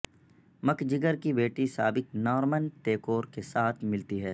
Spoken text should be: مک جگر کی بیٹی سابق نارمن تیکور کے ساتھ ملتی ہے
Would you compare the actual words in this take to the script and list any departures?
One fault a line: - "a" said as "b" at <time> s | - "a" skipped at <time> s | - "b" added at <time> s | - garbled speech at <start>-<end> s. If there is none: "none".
none